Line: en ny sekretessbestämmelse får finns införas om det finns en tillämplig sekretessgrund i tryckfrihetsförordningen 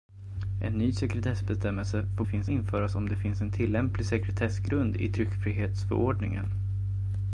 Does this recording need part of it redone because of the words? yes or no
no